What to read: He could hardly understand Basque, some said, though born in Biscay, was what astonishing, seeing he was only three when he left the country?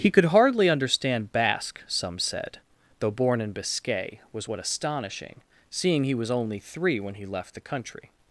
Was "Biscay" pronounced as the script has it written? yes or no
yes